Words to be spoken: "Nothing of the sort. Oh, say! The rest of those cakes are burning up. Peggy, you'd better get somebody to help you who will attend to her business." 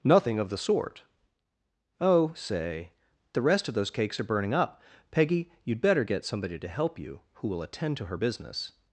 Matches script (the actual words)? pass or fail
pass